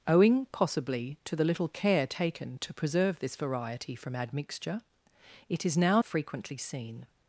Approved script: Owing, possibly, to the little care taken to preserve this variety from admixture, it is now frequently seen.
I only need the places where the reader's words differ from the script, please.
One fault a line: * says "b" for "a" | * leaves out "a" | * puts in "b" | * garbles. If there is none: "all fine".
all fine